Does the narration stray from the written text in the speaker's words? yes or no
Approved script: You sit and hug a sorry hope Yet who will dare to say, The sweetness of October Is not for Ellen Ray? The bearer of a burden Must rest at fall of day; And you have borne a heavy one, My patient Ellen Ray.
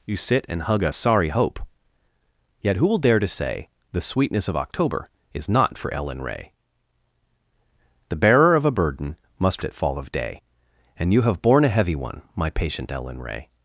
yes